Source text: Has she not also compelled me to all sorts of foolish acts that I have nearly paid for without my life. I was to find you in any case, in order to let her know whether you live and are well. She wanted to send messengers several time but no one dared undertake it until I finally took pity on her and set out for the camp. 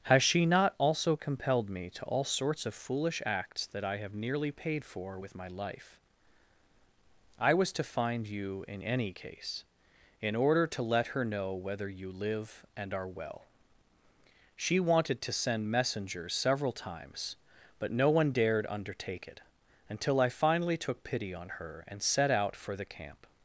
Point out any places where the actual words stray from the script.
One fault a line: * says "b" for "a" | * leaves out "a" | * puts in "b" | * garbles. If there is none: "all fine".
* says "with" for "without"
* says "times" for "time"